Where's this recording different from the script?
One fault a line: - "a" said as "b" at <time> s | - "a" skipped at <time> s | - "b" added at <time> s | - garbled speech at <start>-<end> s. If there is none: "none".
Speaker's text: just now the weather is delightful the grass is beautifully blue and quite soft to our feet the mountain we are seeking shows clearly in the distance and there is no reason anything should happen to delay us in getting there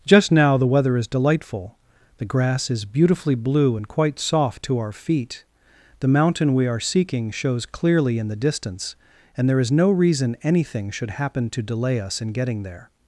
none